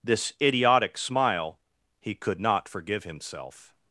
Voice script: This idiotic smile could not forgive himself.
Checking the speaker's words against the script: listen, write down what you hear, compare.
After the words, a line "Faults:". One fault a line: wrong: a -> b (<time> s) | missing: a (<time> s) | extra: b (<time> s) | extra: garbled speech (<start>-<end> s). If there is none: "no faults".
This idiotic smile he could not forgive himself.
Faults:
extra: he (2.0 s)